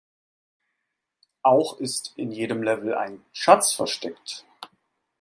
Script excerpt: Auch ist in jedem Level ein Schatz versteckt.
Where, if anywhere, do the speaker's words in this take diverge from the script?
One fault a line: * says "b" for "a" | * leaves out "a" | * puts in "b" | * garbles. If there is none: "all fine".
all fine